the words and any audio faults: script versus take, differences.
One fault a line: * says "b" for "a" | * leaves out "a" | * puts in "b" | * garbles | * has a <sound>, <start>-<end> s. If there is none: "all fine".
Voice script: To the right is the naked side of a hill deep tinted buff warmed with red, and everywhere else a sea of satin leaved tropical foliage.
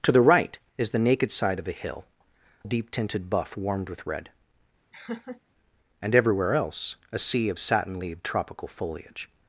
* has a laugh, 4.9-5.4 s